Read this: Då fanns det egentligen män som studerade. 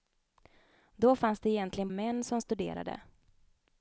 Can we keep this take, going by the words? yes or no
yes